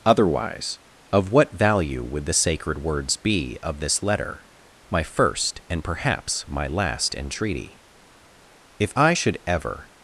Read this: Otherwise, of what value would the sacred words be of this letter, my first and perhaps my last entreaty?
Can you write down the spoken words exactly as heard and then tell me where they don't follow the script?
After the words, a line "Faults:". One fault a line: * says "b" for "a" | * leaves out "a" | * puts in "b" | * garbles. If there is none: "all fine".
Otherwise, of what value would the sacred words be of this letter, my first and perhaps my last entreaty? If I should ever
Faults:
* puts in "If I should ever"